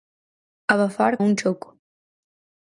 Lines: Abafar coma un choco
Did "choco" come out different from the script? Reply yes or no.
no